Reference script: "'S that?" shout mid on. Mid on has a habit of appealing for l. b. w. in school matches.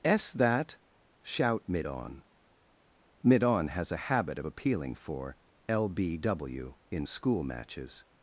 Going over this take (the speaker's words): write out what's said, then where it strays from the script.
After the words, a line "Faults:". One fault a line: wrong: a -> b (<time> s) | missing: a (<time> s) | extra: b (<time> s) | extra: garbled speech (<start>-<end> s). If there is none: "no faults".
"'S that?" shout mid on. Mid on has a habit of appealing for l. b. w. in school matches.
Faults:
no faults